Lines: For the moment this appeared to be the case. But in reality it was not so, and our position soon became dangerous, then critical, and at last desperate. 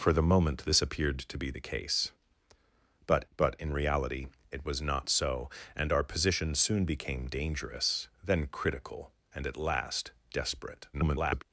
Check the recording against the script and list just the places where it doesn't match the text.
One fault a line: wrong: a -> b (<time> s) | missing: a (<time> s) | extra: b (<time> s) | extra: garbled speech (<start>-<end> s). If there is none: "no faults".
extra: but (3.3 s)
extra: garbled speech (10.9-11.4 s)